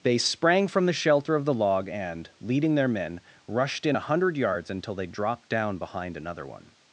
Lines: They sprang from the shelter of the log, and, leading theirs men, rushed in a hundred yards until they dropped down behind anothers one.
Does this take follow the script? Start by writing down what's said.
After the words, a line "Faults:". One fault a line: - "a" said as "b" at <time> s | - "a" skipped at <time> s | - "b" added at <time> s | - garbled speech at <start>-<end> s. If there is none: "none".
They sprang from the shelter of the log, and, leading their men, rushed in a hundred yards until they dropped down behind another one.
Faults:
- "theirs" said as "their" at 2.8 s
- "anothers" said as "another" at 6.2 s